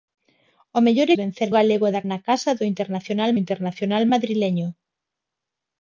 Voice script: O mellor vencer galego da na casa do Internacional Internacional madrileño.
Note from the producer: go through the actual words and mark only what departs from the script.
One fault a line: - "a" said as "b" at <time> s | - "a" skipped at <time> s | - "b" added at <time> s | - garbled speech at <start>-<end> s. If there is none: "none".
none